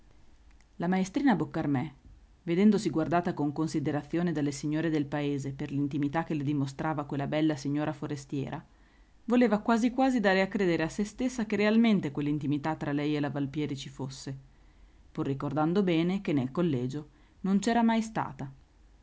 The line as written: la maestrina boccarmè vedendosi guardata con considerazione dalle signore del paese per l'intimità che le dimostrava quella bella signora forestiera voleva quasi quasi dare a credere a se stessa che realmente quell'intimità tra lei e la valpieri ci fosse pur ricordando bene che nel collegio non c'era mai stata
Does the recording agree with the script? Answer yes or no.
yes